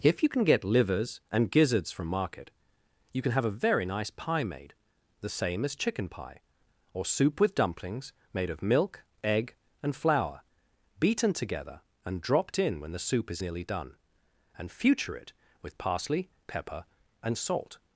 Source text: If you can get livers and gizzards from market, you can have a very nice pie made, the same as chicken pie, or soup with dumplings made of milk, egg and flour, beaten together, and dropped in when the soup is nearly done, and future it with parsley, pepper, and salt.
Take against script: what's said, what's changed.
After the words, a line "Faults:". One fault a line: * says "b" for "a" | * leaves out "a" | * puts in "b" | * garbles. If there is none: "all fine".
If you can get livers and gizzards from market, you can have a very nice pie made, the same as chicken pie, or soup with dumplings made of milk, egg and flour, beaten together, and dropped in when the soup is nearly done, and future it with parsley, pepper, and salt.
Faults:
all fine